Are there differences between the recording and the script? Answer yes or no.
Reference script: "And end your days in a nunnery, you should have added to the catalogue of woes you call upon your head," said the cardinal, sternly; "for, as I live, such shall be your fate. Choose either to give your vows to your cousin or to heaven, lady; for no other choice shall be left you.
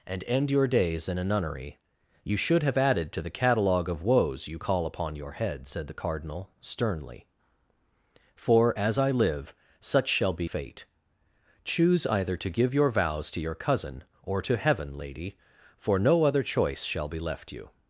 yes